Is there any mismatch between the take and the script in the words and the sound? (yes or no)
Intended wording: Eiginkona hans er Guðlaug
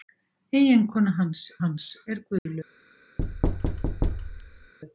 yes